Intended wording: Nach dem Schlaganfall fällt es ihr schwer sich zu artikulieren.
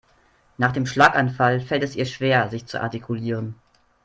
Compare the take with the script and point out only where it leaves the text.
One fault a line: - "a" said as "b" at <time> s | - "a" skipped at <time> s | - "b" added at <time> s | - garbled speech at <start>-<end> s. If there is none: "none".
none